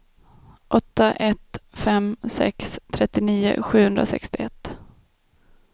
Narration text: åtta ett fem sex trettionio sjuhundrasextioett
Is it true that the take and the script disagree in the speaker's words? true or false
false